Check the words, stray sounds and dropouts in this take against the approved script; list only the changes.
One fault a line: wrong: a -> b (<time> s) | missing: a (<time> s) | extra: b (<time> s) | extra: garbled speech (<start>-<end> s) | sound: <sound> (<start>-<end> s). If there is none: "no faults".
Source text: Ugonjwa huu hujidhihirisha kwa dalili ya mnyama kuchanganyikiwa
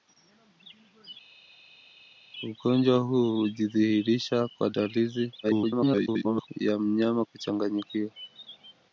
extra: garbled speech (5.4-6.5 s)